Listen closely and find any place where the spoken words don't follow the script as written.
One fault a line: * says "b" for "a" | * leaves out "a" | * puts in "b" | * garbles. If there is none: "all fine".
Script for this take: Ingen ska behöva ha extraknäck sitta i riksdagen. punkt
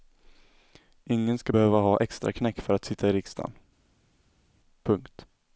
* puts in "för att"